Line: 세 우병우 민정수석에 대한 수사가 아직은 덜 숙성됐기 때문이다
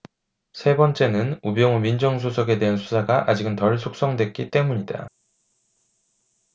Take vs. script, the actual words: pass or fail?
fail